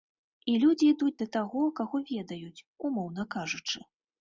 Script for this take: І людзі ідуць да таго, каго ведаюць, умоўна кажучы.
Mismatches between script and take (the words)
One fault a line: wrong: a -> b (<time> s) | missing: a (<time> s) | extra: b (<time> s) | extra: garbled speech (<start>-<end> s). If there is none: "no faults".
no faults